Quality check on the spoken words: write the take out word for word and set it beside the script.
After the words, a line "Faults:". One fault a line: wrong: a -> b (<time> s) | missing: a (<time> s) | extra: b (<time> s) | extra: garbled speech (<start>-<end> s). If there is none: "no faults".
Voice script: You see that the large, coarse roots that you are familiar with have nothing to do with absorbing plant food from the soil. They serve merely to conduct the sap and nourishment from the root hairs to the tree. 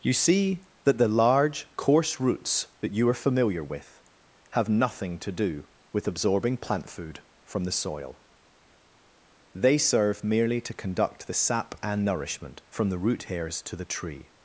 You see that the large, coarse roots that you are familiar with have nothing to do with absorbing plant food from the soil. They serve merely to conduct the sap and nourishment from the root hairs to the tree.
Faults:
no faults